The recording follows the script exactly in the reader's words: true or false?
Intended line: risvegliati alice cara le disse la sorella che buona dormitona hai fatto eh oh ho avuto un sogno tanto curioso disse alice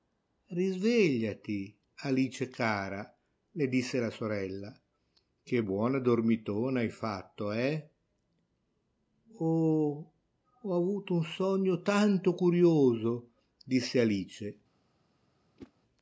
true